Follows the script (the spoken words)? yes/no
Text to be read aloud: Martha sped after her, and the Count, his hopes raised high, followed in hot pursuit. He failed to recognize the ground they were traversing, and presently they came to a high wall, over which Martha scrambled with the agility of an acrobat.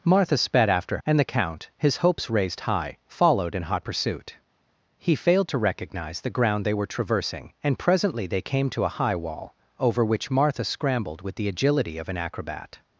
no